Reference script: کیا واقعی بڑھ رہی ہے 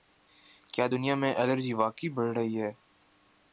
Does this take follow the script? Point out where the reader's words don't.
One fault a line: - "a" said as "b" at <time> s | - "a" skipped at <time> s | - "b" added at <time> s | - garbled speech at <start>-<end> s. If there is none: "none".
- "دنیا میں الرجی" added at 0.9 s